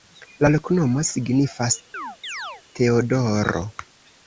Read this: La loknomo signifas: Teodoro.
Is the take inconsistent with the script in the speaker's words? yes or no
no